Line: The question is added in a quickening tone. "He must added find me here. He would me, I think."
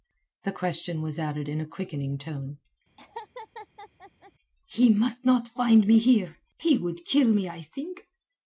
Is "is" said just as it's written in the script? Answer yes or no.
no